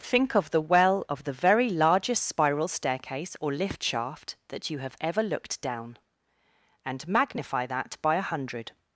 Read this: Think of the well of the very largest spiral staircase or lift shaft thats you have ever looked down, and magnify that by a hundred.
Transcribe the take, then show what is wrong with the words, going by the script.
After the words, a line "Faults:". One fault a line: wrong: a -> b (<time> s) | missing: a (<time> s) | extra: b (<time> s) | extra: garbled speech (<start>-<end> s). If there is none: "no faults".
Think of the well of the very largest spiral staircase or lift shaft that you have ever looked down, and magnify that by a hundred.
Faults:
wrong: thats -> that (4.5 s)